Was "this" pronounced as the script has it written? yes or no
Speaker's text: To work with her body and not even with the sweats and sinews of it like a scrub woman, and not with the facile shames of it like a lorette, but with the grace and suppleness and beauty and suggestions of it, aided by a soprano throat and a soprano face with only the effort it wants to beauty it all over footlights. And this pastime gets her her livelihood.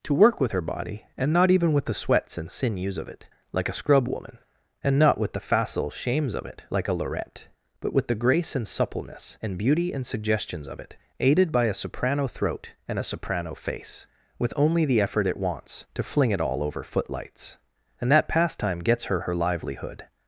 no